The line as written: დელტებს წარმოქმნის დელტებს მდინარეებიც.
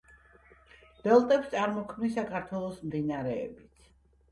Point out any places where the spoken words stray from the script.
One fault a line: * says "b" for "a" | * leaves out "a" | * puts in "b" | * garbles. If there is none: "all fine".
* says "საქართველოს" for "დელტებს"